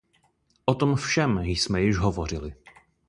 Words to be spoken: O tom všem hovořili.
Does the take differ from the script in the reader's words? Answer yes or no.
yes